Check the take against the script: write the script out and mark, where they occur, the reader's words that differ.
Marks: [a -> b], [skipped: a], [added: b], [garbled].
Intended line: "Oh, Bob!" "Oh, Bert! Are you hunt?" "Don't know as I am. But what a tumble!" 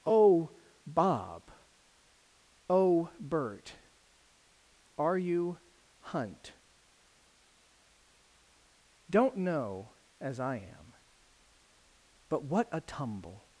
"Oh, Bob!" "Oh, Bert! Are you hunt?" "Don't know as I am. But what a tumble!"